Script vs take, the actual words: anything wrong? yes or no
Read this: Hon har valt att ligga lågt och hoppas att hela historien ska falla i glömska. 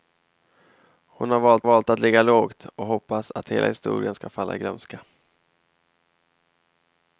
yes